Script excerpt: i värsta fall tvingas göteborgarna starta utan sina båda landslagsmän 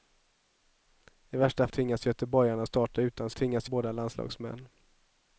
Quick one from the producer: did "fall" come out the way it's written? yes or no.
no